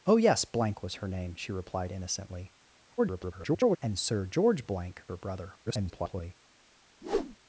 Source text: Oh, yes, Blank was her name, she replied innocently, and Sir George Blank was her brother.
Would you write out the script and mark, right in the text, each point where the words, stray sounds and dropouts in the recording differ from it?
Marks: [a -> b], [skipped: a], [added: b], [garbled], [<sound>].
Oh, yes, Blank was her name, she replied innocently, [garbled] and Sir George Blank [skipped: was] her brother. [garbled] [whoosh]